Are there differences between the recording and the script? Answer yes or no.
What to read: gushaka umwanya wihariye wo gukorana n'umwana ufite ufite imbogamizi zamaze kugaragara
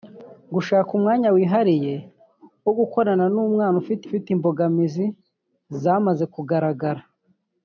no